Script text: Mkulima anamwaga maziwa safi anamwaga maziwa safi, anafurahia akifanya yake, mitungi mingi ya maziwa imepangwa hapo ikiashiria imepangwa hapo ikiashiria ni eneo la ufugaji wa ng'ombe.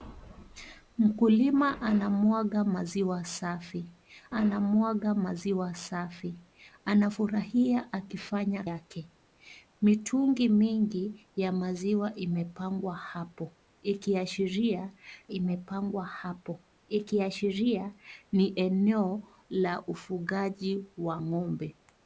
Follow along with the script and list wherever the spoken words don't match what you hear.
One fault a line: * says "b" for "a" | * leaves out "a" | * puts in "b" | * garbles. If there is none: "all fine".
all fine